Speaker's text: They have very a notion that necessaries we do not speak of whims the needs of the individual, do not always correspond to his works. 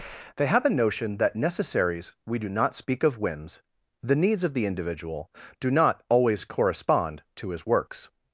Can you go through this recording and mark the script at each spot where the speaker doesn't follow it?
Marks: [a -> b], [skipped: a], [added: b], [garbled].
They have [skipped: very] a notion that necessaries we do not speak of whims the needs of the individual, do not always correspond to his works.